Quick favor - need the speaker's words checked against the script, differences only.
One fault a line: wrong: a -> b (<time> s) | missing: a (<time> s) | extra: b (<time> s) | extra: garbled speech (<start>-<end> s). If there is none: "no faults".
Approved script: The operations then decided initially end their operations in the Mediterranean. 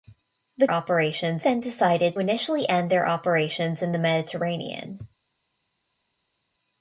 no faults